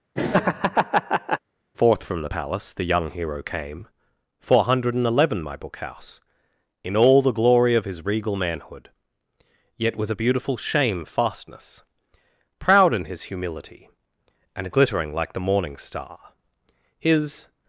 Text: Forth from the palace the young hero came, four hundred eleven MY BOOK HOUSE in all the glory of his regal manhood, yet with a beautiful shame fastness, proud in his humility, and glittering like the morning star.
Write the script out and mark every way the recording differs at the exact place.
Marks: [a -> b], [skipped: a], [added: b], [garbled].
Forth from the palace the young hero came, four hundred eleven MY BOOK HOUSE in all the glory of his regal manhood, yet with a beautiful shame fastness, proud in his humility, and glittering like the morning star. [added: His]